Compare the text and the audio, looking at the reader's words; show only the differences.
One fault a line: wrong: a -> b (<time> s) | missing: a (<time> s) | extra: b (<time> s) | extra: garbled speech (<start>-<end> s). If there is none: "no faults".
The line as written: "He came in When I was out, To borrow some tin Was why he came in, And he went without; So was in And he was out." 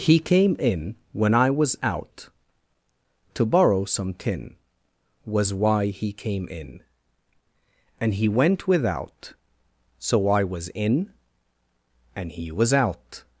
extra: I (10.3 s)